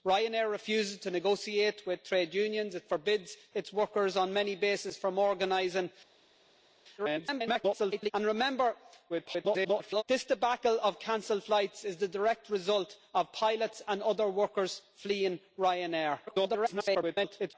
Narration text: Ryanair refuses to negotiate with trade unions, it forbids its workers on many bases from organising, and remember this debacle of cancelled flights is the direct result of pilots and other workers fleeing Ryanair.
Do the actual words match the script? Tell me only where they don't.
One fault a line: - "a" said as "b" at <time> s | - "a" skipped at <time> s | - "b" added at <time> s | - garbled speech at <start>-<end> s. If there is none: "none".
- garbled speech at 7.0-8.1 s
- garbled speech at 9.1-10.0 s
- garbled speech at 16.3-17.5 s